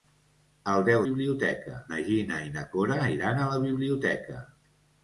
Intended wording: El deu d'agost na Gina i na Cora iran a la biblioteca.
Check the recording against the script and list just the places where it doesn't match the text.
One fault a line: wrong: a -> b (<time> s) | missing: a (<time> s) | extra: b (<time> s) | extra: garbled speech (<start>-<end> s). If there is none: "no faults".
wrong: d'agost -> biblioteca (1.0 s)